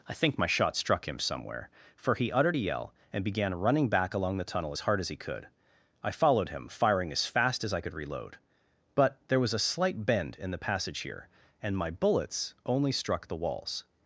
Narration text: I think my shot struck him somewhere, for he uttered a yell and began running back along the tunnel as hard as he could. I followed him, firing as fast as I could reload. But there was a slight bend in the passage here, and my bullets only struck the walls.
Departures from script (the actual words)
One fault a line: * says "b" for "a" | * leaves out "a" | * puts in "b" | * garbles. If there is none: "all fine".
all fine